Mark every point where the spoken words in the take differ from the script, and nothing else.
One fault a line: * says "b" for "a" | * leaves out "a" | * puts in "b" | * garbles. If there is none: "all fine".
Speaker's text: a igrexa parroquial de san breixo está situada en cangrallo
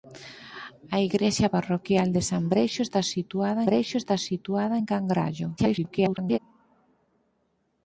* puts in "breixo está situada"
* garbles